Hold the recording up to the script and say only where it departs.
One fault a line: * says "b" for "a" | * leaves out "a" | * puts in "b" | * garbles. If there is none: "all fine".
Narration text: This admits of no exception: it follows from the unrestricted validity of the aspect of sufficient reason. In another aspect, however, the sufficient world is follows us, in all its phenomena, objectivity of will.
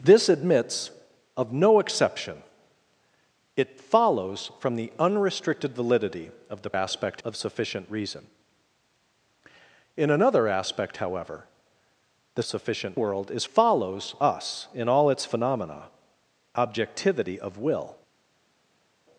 all fine